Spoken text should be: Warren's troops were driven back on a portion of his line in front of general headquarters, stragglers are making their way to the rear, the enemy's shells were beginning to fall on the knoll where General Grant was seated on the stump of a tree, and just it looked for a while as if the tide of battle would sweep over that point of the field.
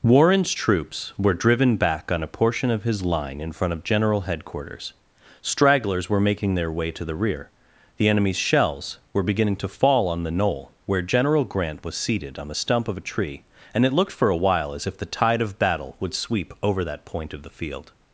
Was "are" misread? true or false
true